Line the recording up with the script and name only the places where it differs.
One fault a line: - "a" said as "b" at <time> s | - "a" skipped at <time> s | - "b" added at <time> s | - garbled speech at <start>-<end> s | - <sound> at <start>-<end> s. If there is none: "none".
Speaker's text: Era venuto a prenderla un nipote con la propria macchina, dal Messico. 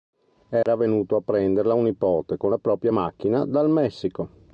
- dropout at 0.6-0.7 s